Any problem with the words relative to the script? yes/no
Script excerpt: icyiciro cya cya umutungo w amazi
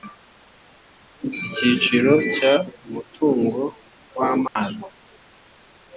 yes